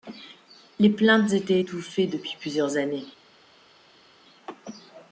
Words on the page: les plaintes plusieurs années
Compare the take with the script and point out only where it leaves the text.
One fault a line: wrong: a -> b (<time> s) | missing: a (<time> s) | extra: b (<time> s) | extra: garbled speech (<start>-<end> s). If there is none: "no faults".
extra: étaient étouffées depuis (1.3 s)